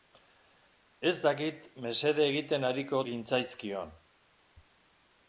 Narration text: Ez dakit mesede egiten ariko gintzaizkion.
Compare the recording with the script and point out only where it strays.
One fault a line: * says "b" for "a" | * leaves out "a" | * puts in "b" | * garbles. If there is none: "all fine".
all fine